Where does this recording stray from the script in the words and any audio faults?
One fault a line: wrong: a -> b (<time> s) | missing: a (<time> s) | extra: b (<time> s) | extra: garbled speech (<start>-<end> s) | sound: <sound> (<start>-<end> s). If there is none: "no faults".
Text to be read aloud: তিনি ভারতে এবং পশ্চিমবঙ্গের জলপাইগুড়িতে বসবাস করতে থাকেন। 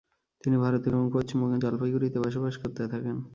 no faults